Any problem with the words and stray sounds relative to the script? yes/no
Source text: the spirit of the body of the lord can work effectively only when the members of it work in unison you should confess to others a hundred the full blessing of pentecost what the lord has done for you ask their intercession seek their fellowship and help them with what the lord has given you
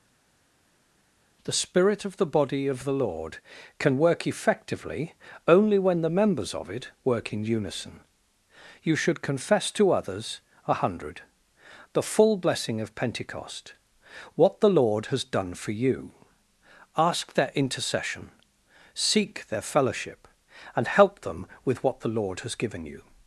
no